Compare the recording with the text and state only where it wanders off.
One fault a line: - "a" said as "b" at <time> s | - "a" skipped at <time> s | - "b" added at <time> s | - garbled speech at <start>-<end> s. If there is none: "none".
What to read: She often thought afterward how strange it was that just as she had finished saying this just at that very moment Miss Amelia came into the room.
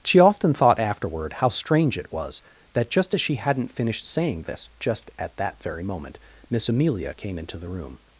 - "had" said as "hadn't" at 3.3 s